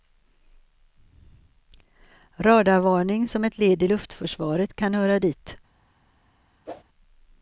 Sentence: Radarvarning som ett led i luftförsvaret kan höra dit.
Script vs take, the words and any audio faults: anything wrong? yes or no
yes